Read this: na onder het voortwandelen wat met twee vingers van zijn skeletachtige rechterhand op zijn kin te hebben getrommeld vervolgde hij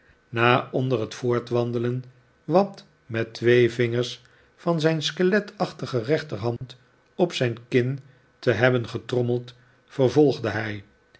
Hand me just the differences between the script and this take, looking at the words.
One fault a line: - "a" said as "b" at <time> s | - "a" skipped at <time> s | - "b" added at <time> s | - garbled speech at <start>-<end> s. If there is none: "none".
none